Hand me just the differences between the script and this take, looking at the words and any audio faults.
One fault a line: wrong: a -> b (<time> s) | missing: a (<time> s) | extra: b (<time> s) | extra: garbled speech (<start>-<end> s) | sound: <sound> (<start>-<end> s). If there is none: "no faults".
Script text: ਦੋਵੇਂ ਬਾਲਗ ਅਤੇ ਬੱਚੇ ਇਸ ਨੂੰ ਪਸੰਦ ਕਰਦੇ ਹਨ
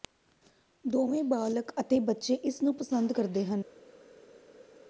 no faults